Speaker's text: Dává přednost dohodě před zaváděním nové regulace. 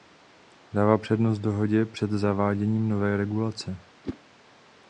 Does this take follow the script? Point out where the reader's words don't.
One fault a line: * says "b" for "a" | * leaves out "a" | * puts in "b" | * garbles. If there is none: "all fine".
all fine